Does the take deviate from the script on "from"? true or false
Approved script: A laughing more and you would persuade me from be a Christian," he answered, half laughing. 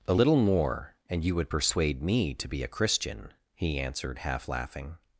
true